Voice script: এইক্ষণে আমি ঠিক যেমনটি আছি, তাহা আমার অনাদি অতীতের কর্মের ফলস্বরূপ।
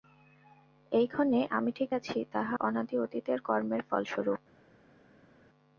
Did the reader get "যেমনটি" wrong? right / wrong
wrong